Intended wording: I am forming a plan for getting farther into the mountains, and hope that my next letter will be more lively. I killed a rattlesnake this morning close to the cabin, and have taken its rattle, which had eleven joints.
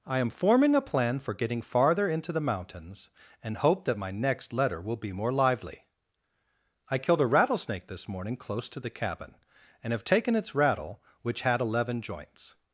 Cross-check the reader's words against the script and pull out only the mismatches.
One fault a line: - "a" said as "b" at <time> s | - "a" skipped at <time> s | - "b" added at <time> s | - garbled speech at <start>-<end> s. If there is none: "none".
none